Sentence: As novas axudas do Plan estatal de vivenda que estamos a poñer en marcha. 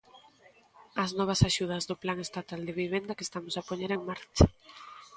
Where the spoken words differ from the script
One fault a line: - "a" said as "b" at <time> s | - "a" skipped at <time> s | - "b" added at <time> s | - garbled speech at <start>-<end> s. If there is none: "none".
none